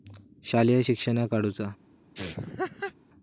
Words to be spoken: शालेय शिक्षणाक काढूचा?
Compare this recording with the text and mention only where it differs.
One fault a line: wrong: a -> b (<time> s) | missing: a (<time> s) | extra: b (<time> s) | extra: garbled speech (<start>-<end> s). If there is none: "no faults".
no faults